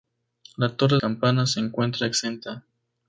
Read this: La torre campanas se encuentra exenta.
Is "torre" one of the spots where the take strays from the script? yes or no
no